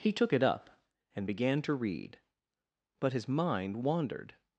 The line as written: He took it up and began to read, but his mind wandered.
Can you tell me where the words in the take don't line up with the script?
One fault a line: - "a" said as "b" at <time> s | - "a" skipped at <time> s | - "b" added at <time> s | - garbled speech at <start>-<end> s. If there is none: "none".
none